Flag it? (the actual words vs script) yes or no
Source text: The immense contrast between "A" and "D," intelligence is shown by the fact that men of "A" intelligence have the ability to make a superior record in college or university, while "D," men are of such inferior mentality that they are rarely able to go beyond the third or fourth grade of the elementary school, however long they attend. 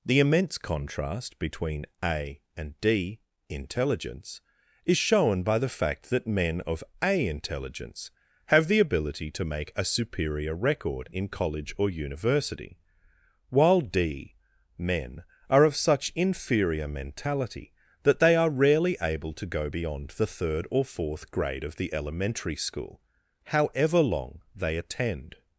no